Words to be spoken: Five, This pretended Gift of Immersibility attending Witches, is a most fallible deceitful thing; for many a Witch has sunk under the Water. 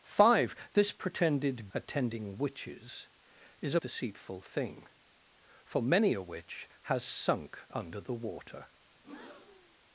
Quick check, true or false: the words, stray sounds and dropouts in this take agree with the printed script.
false